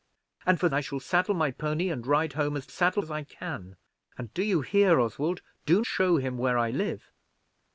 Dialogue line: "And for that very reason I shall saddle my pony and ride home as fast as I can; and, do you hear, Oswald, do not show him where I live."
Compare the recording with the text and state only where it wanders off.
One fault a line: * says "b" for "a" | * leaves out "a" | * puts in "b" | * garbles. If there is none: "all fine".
* leaves out "that very reason"
* says "saddle" for "fast"
* leaves out "not"